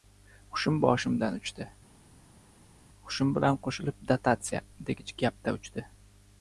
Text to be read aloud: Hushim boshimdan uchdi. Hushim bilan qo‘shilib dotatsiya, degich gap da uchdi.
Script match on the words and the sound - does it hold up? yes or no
yes